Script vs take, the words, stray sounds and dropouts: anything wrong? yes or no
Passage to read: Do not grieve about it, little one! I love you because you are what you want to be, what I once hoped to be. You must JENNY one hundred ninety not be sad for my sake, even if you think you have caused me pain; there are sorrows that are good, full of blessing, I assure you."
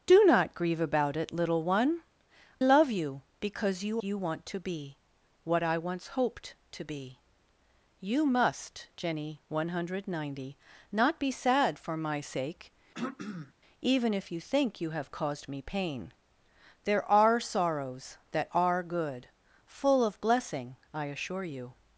yes